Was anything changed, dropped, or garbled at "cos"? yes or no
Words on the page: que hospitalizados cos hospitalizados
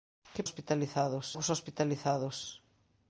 no